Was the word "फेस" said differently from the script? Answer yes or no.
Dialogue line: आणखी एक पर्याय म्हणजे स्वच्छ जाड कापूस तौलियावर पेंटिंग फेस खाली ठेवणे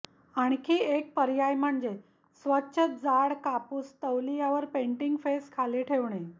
no